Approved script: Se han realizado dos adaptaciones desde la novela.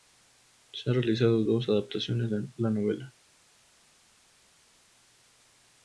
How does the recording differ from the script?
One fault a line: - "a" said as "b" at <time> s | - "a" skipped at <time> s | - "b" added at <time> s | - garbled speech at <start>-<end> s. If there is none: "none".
- "desde" said as "de" at 2.3 s